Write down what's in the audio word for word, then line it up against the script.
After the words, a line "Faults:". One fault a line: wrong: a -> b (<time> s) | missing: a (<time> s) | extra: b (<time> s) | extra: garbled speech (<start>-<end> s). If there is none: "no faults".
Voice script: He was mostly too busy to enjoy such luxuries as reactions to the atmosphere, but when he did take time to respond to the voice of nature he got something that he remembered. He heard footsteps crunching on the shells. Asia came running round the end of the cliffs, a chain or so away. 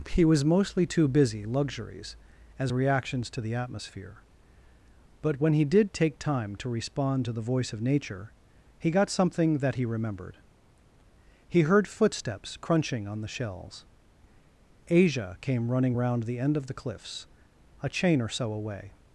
He was mostly too busy luxuries as reactions to the atmosphere, but when he did take time to respond to the voice of nature he got something that he remembered. He heard footsteps crunching on the shells. Asia came running round the end of the cliffs, a chain or so away.
Faults:
missing: to enjoy such (1.4 s)